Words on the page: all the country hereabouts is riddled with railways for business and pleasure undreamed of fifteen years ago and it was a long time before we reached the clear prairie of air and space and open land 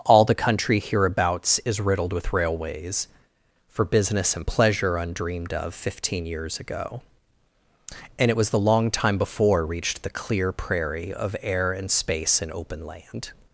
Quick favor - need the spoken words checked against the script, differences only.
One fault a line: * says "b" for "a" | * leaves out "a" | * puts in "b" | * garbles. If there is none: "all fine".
* says "the" for "a"
* leaves out "we"